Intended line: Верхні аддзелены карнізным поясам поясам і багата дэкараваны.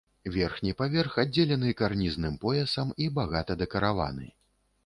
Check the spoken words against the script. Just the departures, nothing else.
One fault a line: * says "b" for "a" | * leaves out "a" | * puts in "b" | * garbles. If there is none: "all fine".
* puts in "паверх"
* leaves out "поясам"